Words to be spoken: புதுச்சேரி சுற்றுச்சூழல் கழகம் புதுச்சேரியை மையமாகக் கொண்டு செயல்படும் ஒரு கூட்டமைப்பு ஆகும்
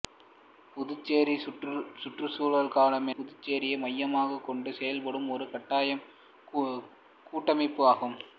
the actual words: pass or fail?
pass